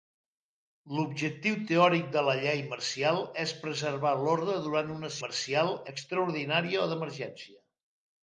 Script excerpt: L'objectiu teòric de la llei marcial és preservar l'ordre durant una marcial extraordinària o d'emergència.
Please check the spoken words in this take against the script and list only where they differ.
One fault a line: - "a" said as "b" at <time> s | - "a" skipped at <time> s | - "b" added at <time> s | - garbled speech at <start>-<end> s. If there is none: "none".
none